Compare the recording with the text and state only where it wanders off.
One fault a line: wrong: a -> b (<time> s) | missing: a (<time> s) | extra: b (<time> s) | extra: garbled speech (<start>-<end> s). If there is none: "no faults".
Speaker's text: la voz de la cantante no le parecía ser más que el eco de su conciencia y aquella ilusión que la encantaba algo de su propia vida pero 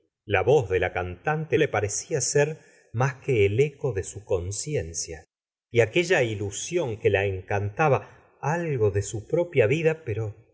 missing: no (1.6 s)